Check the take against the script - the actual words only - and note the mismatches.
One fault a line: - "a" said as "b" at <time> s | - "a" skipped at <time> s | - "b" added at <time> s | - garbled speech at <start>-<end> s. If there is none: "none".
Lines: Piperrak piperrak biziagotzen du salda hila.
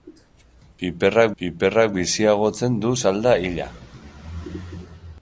none